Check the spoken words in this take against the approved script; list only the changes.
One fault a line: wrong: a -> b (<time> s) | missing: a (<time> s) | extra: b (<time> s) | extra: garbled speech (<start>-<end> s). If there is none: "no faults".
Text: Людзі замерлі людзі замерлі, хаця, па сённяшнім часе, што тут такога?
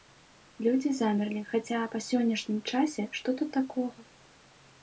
missing: людзі замерлі (1.4 s)